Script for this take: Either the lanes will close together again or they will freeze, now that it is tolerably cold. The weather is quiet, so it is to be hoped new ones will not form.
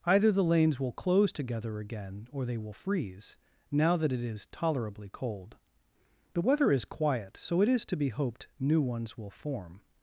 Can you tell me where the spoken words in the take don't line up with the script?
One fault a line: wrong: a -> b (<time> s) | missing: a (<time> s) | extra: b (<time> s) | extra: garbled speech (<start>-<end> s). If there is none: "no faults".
missing: not (9.3 s)